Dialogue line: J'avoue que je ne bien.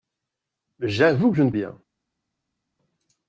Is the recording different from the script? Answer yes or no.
no